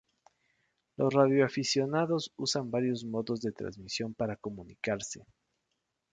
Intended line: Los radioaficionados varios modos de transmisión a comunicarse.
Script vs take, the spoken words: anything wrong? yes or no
yes